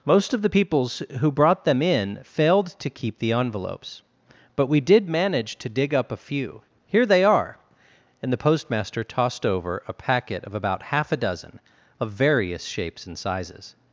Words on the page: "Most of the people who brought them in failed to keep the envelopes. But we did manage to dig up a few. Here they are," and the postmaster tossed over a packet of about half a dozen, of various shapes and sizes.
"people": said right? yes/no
no